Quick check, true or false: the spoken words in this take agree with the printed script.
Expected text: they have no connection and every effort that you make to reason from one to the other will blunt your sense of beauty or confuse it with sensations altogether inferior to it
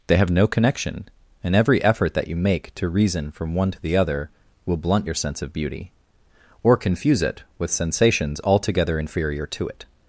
true